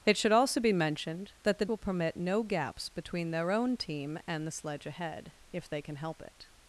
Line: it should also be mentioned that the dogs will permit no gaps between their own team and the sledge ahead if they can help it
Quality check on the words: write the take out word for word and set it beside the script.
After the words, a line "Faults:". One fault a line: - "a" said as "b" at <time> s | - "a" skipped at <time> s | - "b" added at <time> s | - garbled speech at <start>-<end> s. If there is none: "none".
it should also be mentioned that the will permit no gaps between their own team and the sledge ahead if they can help it
Faults:
- "dogs" skipped at 1.6 s